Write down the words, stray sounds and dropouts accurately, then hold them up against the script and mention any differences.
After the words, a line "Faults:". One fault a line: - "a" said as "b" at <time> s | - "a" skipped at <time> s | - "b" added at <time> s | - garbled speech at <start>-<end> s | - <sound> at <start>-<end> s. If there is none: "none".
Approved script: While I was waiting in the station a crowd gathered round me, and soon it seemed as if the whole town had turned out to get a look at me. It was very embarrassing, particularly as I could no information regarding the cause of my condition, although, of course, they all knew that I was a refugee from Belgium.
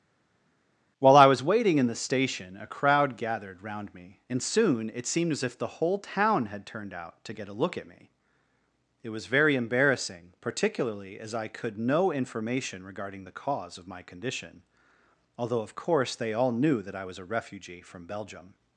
While I was waiting in the station a crowd gathered round me, and soon it seemed as if the whole town had turned out to get a look at me. It was very embarrassing, particularly as I could no information regarding the cause of my condition, although, of course, they all knew that I was a refugee from Belgium.
Faults:
none